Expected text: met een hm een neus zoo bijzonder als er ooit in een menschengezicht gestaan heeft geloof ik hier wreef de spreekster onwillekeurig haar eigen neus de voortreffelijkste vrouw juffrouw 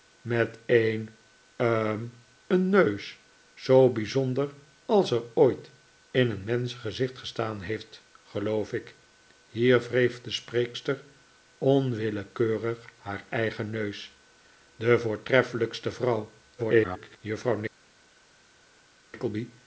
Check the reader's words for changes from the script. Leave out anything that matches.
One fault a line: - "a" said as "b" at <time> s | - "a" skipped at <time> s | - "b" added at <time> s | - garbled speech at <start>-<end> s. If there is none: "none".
- garbled speech at 16.6-17.2 s